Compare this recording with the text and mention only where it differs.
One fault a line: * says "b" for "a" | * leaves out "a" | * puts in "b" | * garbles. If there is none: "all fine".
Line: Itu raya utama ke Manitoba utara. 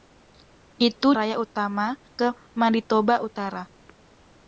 all fine